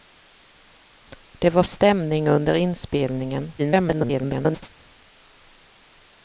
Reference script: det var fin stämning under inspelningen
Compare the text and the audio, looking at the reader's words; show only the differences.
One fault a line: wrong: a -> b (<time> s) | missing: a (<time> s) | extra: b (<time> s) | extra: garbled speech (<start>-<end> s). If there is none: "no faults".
missing: fin (1.6 s)
extra: garbled speech (3.6-4.7 s)